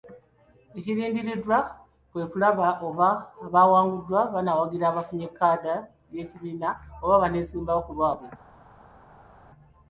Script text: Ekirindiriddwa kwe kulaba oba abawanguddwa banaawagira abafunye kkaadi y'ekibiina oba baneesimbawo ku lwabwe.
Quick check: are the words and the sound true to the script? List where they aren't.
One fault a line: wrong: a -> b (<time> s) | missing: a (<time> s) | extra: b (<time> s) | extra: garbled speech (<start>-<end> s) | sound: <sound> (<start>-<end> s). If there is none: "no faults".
no faults